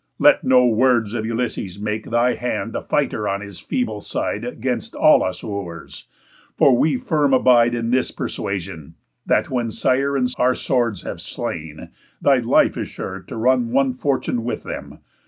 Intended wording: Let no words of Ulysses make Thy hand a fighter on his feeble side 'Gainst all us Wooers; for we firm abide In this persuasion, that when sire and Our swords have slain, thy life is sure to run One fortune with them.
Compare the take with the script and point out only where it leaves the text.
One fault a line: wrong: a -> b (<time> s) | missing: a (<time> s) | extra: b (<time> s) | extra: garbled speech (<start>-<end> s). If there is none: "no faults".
no faults